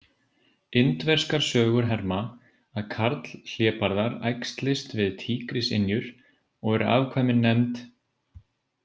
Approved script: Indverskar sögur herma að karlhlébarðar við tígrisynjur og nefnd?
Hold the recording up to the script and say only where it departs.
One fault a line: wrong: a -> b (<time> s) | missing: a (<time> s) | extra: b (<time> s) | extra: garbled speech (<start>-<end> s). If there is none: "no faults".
extra: æxlist (4.3 s)
extra: eru afkvæmin (6.8 s)